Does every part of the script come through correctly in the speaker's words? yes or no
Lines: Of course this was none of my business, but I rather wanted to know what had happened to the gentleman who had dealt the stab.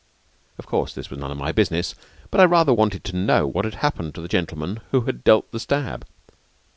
yes